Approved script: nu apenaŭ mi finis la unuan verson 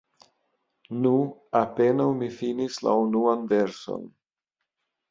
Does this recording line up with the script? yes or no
yes